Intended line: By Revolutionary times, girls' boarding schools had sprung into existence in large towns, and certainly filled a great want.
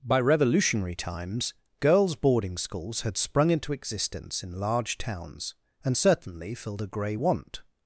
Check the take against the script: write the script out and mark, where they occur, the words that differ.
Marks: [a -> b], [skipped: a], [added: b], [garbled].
By Revolutionary times, girls' boarding schools had sprung into existence in large towns, and certainly filled a [great -> grey] want.